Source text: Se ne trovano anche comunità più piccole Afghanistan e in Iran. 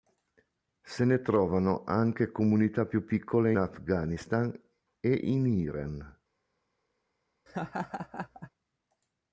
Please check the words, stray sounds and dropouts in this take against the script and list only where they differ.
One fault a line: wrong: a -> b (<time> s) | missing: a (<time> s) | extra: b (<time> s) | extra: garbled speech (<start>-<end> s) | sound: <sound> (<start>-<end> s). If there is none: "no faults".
sound: laugh (7.5-8.5 s)